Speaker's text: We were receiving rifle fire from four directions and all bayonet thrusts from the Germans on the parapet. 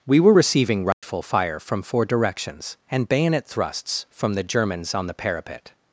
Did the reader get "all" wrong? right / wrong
wrong